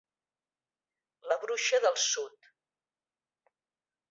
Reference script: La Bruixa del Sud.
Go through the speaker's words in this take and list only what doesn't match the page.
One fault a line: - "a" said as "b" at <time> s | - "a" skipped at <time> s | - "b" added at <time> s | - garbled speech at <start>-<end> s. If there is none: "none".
none